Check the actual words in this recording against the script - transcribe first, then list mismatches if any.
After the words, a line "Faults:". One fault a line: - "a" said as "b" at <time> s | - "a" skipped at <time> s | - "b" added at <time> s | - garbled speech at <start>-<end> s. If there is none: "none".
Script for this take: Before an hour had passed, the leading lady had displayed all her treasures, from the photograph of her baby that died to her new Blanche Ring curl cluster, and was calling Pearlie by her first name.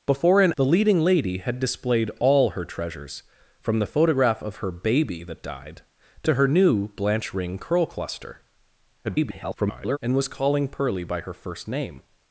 Before an the leading lady had displayed all her treasures, from the photograph of her baby that died to her new Blanche Ring curl cluster, [garbled] and was calling Pearlie by her first name.
Faults:
- "hour had passed" skipped at 0.5 s
- garbled speech at 9.0-10.0 s